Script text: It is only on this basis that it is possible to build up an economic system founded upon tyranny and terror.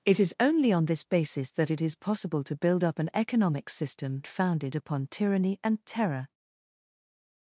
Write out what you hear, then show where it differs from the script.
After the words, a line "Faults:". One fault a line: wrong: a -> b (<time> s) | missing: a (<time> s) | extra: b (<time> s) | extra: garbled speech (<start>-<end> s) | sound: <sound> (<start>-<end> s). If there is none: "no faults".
It is only on this basis that it is possible to build up an economic system founded upon tyranny and terror.
Faults:
no faults